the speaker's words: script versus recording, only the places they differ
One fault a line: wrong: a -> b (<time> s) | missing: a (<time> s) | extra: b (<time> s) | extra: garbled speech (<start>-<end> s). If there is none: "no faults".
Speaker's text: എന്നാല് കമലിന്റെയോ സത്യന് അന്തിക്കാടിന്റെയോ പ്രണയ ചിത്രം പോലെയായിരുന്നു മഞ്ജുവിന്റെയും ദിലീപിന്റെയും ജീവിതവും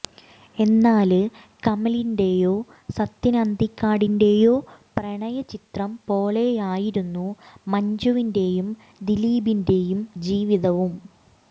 no faults